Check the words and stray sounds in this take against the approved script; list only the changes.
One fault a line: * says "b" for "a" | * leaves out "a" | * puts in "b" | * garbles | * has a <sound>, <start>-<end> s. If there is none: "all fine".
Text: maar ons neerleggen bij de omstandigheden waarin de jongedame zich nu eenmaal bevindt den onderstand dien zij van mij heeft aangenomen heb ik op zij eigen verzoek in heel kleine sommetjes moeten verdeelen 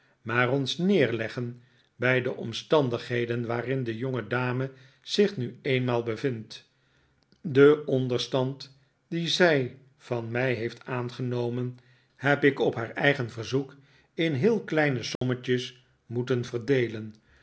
* says "haar" for "zij"
* has a dropout, 15.2-15.2 s